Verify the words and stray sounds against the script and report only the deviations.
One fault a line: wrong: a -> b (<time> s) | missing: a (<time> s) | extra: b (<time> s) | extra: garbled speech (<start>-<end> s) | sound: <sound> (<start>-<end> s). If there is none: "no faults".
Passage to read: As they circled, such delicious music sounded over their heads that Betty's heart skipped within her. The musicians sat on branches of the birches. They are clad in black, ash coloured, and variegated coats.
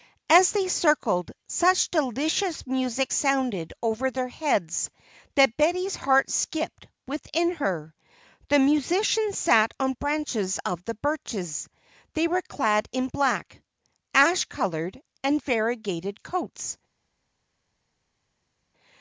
wrong: are -> were (12.3 s)